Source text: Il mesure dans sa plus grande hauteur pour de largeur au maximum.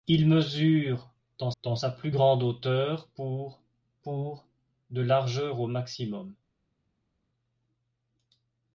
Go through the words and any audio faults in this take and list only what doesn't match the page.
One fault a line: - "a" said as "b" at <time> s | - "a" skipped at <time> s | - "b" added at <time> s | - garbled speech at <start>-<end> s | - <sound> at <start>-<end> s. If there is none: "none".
- "dans" added at 1.6 s
- "pour" added at 4.0 s